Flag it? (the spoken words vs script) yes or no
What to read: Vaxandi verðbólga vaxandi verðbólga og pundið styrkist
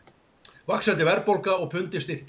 yes